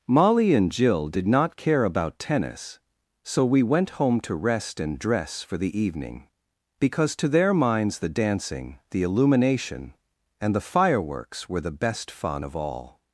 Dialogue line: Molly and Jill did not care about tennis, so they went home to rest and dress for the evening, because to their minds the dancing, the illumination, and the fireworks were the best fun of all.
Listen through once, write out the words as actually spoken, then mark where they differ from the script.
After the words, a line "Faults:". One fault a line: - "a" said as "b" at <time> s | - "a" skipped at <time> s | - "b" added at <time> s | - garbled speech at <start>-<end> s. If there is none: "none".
Molly and Jill did not care about tennis, so we went home to rest and dress for the evening, because to their minds the dancing, the illumination, and the fireworks were the best fun of all.
Faults:
- "they" said as "we" at 3.5 s